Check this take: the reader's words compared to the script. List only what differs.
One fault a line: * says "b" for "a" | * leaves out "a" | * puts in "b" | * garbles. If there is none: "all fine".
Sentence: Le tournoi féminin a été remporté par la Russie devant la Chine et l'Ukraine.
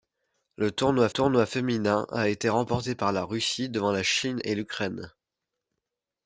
* puts in "tournoi"